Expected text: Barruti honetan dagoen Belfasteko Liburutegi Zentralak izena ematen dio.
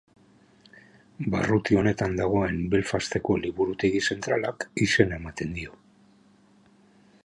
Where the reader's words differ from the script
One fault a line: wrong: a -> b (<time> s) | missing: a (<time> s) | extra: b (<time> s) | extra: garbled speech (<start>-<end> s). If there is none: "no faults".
no faults